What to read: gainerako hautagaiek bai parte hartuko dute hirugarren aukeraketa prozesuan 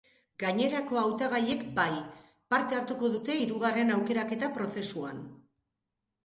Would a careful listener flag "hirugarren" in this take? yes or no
no